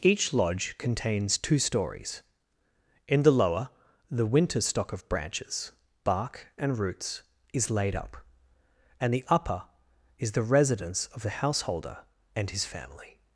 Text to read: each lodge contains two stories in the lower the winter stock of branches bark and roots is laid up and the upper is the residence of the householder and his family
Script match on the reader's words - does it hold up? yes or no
yes